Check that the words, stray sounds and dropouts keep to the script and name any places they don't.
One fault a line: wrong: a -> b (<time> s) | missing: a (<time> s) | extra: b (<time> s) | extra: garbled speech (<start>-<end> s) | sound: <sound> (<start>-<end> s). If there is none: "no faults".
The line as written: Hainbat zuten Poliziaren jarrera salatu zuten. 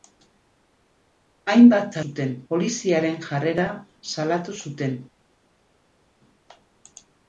no faults